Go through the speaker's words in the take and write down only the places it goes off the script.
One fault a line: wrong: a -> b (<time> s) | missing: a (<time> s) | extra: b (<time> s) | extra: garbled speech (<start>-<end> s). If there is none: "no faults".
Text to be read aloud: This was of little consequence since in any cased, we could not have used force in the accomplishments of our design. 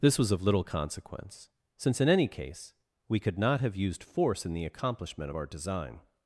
wrong: cased -> case (2.3 s)
wrong: accomplishments -> accomplishment (4.7 s)